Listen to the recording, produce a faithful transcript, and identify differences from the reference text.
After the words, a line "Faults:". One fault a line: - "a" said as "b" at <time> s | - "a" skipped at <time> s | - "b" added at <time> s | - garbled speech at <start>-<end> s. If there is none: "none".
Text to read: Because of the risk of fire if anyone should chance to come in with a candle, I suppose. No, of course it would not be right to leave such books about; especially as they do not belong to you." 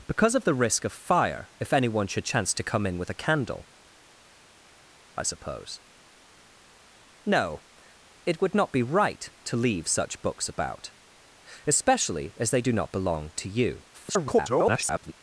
Because of the risk of fire if anyone should chance to come in with a candle, I suppose. No, it would not be right to leave such books about; especially as they do not belong to you." [garbled]
Faults:
- "of course" skipped at 7.6 s
- garbled speech at 13.9-15.1 s